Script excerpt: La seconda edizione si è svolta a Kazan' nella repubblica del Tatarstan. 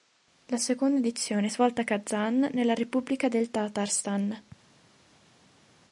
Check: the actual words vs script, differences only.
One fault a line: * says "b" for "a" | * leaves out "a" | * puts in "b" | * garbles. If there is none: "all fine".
* leaves out "si"